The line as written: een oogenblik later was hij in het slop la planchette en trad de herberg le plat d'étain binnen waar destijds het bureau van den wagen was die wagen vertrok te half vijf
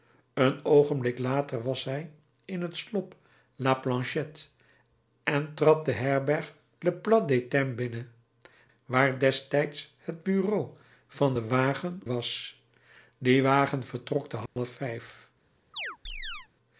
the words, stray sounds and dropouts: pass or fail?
fail